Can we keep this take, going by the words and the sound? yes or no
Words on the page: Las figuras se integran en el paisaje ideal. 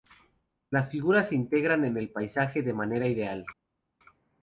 no